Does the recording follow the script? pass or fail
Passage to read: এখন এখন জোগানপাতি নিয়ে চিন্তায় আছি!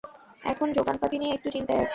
fail